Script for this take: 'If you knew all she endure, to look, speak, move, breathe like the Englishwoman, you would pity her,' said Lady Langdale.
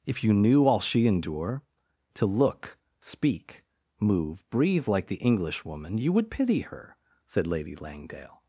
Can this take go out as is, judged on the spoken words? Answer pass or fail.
pass